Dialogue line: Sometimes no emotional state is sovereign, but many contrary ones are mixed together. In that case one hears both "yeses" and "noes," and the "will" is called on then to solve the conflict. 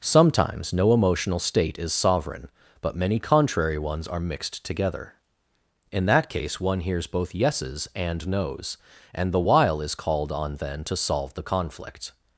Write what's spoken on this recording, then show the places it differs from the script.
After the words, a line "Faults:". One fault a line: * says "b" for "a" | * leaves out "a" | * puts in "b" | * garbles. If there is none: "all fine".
Sometimes no emotional state is sovereign, but many contrary ones are mixed together. In that case one hears both "yeses" and "noes," and the "while" is called on then to solve the conflict.
Faults:
* says "while" for "will"